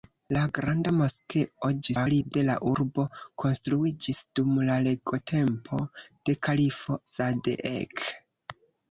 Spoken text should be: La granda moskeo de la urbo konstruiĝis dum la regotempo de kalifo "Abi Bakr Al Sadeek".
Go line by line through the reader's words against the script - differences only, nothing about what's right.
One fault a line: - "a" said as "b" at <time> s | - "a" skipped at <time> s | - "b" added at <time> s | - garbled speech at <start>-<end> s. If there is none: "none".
- garbled speech at 1.8-2.3 s
- "Abi Bakr Al" skipped at 7.0 s